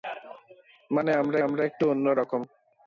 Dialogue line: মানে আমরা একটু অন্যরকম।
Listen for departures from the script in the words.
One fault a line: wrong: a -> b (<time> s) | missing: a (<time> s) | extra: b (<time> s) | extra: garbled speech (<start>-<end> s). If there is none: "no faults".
extra: আমরা (1.4 s)